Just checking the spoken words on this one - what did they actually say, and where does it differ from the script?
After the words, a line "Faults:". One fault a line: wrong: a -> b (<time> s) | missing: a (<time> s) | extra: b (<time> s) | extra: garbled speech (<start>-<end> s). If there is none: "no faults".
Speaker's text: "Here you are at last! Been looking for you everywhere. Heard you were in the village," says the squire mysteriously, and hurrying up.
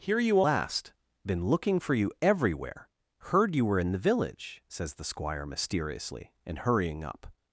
"Here you last! Been looking for you everywhere. Heard you were in the village," says the squire mysteriously, and hurrying up.
Faults:
missing: are at (0.4 s)